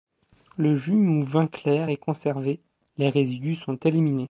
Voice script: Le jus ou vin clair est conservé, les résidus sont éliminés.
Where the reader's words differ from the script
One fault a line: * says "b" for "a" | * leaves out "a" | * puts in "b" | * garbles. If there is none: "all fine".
all fine